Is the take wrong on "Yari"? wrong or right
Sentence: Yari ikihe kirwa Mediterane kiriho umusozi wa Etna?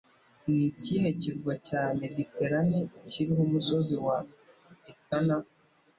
wrong